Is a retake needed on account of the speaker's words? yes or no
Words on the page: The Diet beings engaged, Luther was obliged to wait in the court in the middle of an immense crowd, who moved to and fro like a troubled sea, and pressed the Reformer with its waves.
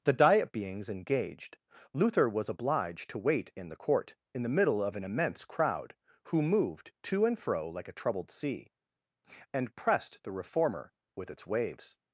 no